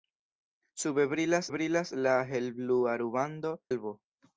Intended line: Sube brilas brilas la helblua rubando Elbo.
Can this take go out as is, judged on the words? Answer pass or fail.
pass